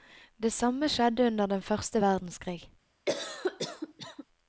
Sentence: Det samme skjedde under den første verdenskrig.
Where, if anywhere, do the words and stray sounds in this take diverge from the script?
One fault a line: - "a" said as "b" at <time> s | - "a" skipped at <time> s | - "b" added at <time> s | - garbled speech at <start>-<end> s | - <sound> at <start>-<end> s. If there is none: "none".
- cough at 3.1-4.2 s